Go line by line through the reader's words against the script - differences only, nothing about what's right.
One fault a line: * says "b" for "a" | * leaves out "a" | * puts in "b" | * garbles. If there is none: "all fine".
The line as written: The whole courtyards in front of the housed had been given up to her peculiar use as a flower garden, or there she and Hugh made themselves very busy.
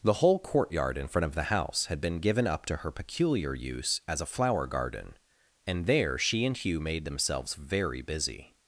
* says "courtyard" for "courtyards"
* says "house" for "housed"
* says "and" for "or"